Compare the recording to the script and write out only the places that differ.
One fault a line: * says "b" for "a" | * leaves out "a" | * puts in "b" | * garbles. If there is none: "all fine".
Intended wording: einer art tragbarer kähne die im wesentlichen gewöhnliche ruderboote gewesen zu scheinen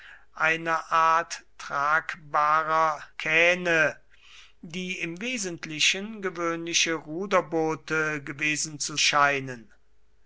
all fine